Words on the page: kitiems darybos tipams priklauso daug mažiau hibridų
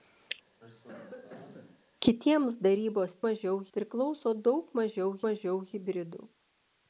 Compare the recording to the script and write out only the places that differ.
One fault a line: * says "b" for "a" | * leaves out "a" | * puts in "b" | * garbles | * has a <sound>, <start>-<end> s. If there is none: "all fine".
* has a cough, 0.6-1.8 s
* says "mažiau" for "tipams"
* puts in "mažiau"